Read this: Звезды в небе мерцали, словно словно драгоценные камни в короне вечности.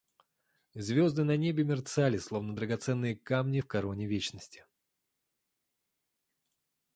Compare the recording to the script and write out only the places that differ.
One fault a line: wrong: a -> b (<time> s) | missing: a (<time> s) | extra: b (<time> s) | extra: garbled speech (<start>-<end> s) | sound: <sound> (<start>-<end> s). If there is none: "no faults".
wrong: в -> на (1.2 s)
missing: словно (2.5 s)